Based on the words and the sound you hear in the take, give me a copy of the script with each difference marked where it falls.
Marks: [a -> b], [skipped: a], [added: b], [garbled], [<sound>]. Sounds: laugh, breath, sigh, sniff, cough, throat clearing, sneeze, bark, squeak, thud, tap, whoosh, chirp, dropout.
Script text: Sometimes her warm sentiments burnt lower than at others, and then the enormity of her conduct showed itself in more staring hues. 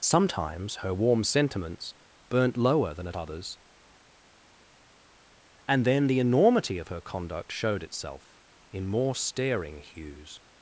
Sometimes her warm sentiments burnt lower than at others, and then the enormity of her conduct showed itself in more staring hues.